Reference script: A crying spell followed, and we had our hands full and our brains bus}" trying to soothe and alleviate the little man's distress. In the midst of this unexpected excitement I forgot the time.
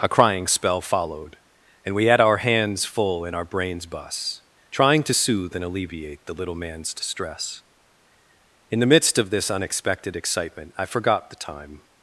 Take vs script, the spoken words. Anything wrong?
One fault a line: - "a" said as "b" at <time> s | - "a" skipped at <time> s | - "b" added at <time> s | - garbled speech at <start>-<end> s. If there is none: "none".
none